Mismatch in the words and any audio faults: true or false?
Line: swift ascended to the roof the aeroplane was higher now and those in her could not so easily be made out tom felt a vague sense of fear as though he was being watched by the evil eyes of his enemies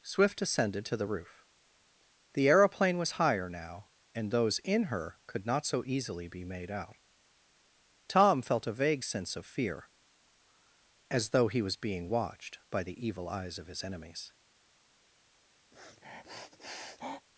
true